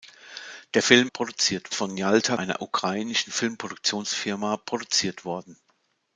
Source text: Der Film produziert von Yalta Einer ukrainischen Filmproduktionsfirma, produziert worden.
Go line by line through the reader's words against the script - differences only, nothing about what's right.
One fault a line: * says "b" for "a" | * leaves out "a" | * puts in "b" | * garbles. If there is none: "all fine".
all fine